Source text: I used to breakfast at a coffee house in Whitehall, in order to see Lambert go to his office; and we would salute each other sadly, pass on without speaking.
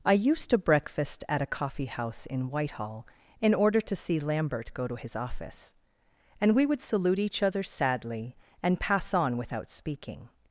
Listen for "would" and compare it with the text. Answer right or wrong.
right